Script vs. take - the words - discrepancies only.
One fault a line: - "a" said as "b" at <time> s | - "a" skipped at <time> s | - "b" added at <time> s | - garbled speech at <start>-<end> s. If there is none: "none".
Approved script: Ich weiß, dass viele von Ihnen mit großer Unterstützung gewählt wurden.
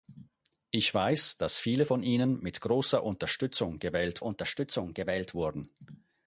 - "Unterstützung gewählt" added at 4.2 s